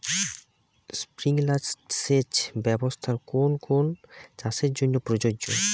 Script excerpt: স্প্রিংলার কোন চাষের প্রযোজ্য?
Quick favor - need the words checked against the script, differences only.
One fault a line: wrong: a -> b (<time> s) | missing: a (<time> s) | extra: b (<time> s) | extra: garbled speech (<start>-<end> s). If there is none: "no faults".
extra: সেচ ব্যবস্থার (1.9 s)
extra: কোন (3.6 s)
extra: জন্য (4.7 s)